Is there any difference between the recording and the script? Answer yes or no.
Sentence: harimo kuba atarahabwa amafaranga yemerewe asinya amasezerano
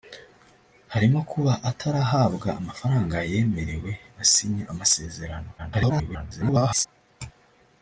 yes